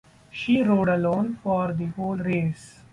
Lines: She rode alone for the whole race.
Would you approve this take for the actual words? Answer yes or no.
yes